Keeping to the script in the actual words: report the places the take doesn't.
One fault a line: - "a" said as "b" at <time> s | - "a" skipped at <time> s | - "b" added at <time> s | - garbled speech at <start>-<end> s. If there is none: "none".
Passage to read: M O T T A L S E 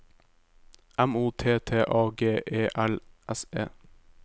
- "G E" added at 2.2 s